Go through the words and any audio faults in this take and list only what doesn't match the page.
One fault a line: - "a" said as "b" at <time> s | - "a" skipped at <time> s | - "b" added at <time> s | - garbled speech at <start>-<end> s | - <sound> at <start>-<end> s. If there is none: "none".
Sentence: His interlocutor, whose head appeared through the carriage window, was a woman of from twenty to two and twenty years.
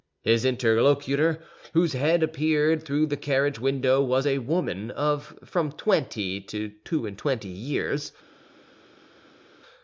none